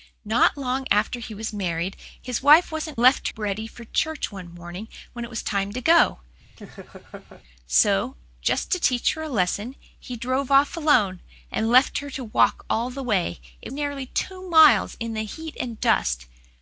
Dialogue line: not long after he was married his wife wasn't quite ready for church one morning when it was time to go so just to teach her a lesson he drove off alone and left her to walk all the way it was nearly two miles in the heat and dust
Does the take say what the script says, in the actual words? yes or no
no